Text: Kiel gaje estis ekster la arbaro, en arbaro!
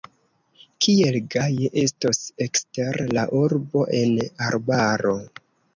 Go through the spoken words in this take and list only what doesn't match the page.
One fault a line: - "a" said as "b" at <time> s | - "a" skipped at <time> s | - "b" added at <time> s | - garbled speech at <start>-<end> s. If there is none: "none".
- "estis" said as "estos" at 1.8 s
- "arbaro" said as "urbo" at 3.5 s